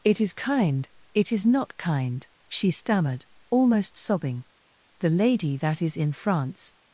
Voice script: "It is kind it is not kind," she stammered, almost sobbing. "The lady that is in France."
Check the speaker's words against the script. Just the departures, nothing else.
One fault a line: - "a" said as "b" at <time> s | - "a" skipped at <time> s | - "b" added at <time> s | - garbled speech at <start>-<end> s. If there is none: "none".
none